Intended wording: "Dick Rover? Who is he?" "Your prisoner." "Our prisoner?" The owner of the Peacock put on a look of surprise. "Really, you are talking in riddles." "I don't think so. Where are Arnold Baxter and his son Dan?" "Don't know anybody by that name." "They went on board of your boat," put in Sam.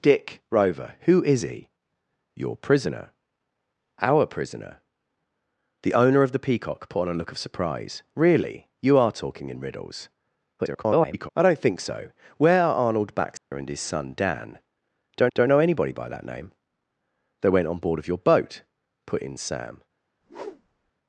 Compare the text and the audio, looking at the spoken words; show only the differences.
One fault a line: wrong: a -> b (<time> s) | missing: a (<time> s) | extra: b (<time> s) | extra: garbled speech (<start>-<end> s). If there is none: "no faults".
extra: garbled speech (10.6-11.3 s)
extra: don't (15.3 s)